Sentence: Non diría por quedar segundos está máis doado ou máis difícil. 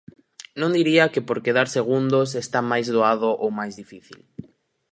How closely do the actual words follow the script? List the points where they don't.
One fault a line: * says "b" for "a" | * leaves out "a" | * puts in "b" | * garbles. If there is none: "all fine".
* puts in "que"